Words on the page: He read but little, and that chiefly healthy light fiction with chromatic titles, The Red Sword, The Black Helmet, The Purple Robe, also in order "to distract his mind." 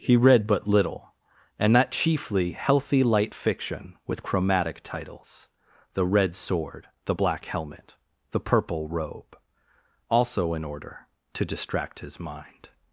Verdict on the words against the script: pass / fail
pass